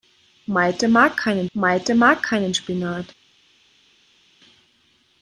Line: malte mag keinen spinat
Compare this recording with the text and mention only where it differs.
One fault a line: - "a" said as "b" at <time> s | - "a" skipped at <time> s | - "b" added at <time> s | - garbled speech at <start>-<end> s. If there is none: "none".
- "malte mag keinen" added at 1.5 s